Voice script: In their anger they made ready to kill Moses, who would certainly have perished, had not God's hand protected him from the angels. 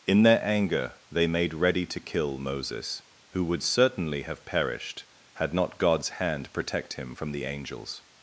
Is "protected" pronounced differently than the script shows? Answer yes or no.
yes